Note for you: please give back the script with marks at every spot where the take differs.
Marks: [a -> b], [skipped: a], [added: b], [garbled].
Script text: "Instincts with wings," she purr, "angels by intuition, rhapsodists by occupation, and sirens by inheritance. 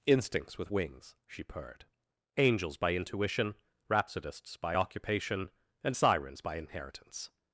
"Instincts with wings," she [purr, -> purred] "angels by intuition, rhapsodists by occupation, and sirens by inheritance.